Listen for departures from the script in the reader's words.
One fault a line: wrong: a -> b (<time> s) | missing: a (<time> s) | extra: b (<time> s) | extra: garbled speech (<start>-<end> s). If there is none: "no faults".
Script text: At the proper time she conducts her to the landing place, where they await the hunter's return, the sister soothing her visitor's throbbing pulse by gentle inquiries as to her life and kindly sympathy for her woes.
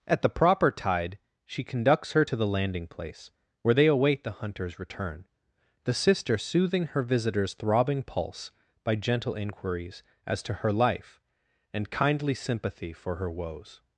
wrong: time -> tide (0.7 s)